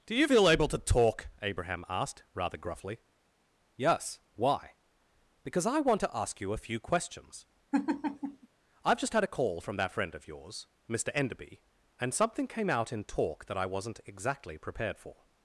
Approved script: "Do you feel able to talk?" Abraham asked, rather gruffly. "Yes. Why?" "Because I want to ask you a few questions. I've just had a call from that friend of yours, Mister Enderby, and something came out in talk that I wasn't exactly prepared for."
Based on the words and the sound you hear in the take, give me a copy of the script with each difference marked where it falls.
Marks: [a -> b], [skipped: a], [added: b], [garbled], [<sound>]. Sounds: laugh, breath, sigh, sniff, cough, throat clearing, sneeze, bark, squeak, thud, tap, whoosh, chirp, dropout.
"Do you feel able to talk?" Abraham asked, rather gruffly. "Yes. Why?" "Because I want to ask you a few questions. [laugh] I've just had a call from that friend of yours, Mister Enderby, and something came out in talk that I wasn't exactly prepared for."